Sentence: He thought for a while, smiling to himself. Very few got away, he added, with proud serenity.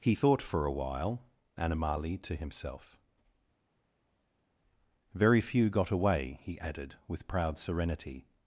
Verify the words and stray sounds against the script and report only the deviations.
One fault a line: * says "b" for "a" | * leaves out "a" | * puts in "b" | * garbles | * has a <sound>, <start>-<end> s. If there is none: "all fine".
* says "animali" for "smiling"